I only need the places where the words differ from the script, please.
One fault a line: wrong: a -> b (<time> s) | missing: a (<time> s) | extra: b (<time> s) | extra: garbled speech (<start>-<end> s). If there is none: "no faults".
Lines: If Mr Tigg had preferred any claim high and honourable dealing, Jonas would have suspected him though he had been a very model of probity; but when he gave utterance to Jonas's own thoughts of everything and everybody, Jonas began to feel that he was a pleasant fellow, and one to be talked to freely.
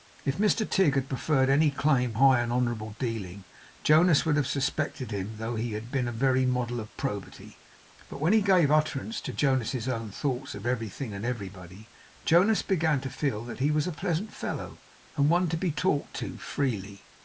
no faults